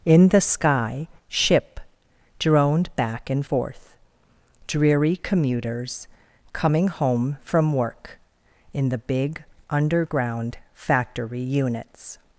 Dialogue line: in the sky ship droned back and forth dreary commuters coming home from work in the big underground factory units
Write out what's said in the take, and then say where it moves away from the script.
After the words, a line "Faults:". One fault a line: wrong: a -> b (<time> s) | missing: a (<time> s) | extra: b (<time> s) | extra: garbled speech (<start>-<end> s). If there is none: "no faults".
in the sky ship droned back and forth dreary commuters coming home from work in the big underground factory units
Faults:
no faults